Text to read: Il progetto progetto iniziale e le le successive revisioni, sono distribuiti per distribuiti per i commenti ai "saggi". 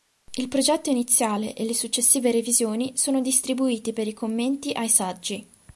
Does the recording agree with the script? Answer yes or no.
no